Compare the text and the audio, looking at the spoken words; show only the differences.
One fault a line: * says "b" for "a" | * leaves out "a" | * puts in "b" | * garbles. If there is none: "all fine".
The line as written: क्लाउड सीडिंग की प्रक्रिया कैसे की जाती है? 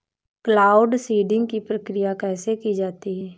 all fine